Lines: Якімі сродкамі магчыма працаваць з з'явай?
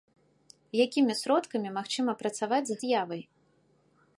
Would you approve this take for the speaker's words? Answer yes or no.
yes